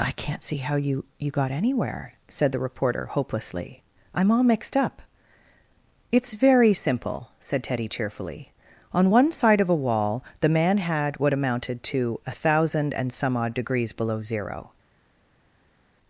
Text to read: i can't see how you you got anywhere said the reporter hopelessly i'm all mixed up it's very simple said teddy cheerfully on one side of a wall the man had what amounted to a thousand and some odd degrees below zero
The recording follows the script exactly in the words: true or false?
true